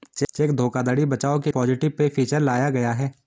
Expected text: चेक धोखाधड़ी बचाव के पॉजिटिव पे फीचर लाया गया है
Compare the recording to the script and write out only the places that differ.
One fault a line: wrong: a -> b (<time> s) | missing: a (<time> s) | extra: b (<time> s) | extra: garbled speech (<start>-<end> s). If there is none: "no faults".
no faults